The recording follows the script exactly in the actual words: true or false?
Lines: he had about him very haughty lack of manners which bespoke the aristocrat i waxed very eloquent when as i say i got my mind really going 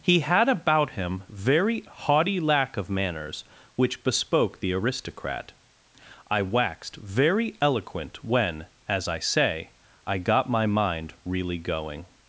true